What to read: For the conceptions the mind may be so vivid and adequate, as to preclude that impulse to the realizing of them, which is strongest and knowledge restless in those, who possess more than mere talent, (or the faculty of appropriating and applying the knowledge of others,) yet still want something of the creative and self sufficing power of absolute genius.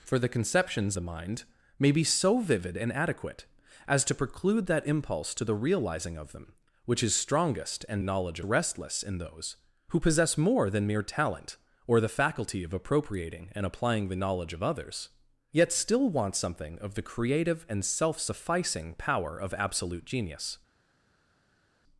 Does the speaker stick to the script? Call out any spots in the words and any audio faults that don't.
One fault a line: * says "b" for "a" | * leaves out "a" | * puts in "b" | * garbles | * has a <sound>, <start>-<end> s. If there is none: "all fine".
all fine